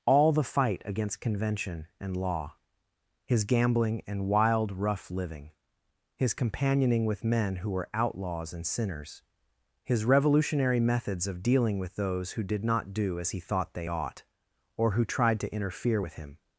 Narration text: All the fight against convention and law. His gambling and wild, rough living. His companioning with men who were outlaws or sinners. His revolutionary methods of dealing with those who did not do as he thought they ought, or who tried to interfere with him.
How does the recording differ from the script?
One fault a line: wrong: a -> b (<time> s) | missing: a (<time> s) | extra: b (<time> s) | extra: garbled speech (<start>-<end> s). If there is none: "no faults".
wrong: or -> and (8.5 s)